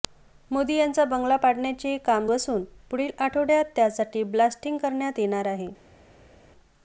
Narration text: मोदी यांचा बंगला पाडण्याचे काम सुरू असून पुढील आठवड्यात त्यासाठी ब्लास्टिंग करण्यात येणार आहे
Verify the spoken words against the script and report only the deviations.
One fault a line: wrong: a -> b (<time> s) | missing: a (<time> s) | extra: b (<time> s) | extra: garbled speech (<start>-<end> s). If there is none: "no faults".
missing: सुरू (2.3 s)